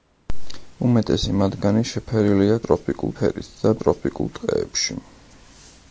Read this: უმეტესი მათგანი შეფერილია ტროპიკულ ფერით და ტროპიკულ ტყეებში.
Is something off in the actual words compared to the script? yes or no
no